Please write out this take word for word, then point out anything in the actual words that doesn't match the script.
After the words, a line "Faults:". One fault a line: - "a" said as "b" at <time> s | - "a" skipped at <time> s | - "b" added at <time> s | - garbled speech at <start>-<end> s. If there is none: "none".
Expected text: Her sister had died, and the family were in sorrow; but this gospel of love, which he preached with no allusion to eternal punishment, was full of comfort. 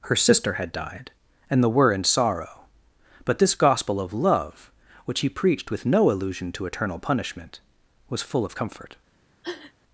Her sister had died, and the were in sorrow; but this gospel of love, which he preached with no allusion to eternal punishment, was full of comfort.
Faults:
- "family" skipped at 1.7 s